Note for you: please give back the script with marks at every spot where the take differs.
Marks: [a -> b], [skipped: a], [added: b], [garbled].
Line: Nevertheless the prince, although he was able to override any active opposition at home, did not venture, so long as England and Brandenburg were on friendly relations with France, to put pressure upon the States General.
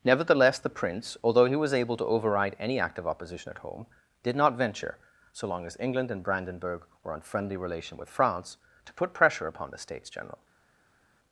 Nevertheless the prince, although he was able to override any active opposition at home, did not venture, so long as England and Brandenburg were on friendly [relations -> relation] with France, to put pressure upon the States General.